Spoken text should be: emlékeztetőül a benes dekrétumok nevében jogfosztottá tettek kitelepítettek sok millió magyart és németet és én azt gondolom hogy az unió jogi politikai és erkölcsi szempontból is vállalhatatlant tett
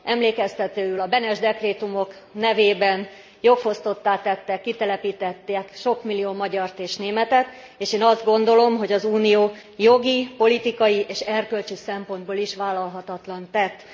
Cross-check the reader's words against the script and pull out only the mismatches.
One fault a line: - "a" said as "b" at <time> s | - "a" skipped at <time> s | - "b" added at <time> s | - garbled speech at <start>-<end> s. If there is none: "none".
none